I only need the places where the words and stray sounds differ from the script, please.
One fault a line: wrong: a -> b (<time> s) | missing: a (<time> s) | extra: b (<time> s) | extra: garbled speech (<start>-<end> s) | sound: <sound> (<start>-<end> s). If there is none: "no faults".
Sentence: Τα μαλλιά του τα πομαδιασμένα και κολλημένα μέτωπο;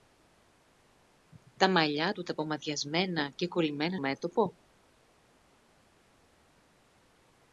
no faults